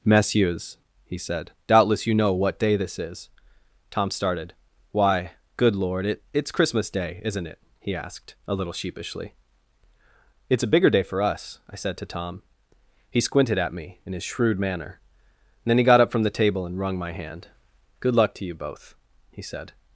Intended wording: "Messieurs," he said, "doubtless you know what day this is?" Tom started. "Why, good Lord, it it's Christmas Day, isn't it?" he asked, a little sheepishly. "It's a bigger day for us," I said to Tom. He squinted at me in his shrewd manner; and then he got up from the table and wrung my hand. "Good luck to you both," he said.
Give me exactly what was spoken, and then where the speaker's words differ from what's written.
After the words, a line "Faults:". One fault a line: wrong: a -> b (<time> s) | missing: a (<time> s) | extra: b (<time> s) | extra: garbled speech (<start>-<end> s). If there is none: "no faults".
"Messieurs," he said, "doubtless you know what day this is?" Tom started. "Why, good Lord, it it's Christmas Day, isn't it?" he asked, a little sheepishly. "It's a bigger day for us," I said to Tom. He squinted at me in his shrewd manner; then he got up from the table and wrung my hand. "Good luck to you both," he said.
Faults:
missing: and (15.0 s)